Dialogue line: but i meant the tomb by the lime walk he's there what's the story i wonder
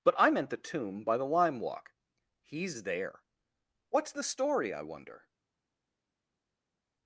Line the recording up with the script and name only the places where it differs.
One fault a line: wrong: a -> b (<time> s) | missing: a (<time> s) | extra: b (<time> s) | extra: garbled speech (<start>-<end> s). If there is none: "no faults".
no faults